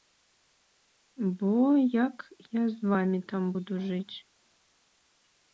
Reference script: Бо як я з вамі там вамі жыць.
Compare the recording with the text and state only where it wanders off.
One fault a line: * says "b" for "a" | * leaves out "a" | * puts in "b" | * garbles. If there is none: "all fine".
* says "буду" for "вамі"